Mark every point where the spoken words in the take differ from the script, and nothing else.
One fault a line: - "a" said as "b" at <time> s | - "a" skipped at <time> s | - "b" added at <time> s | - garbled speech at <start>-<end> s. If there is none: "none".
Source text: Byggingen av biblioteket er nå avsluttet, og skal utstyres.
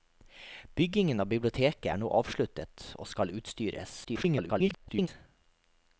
- garbled speech at 4.0-5.1 s